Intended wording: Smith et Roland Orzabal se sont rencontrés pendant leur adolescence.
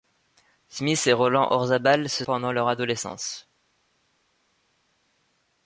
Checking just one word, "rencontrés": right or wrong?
wrong